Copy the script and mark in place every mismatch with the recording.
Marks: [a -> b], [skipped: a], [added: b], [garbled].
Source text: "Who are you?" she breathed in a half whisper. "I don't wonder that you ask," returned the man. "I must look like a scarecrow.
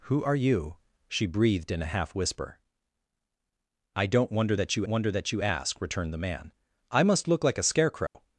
"Who are you?" she breathed in a half whisper. "I don't wonder that you [added: wonder that you] ask," returned the man. "I must look like a scarecrow.